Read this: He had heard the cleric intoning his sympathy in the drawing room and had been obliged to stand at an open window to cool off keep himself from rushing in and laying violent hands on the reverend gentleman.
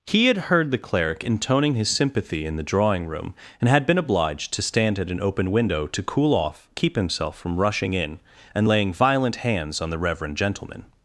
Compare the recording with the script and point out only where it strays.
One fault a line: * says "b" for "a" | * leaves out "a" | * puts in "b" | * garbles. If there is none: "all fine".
all fine